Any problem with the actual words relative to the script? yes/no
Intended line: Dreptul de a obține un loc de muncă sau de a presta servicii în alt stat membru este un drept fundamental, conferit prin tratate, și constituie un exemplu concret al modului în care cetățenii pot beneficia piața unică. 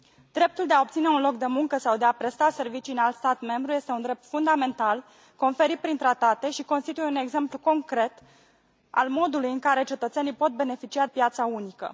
no